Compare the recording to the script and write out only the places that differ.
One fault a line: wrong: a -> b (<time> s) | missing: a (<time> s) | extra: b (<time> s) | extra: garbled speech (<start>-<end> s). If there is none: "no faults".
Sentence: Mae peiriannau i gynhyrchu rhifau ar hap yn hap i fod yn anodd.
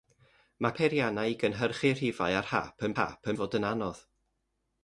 no faults